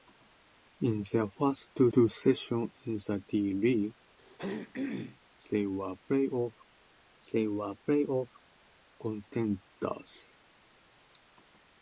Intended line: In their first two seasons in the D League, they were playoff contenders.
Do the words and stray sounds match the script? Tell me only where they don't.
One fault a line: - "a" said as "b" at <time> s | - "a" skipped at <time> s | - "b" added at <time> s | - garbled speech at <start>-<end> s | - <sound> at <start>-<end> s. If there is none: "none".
- "two" added at 1.9 s
- throat clearing at 4.2-5.2 s
- "they were playoff" added at 7.3 s